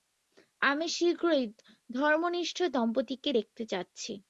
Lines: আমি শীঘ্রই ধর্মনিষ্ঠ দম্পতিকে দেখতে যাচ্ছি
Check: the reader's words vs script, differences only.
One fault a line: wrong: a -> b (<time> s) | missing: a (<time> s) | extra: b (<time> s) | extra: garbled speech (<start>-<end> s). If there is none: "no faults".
no faults